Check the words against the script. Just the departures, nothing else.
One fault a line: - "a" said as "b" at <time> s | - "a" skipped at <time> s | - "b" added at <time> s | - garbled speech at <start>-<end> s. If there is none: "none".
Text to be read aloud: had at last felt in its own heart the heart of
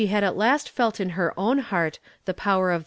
- "its" said as "her" at 1.1 s
- "heart" said as "power" at 2.3 s